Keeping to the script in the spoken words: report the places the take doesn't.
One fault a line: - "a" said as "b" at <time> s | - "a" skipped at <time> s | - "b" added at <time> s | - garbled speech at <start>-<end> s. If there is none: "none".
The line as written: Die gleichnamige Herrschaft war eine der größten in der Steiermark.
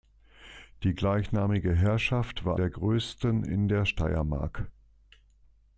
- "eine" skipped at 2.6 s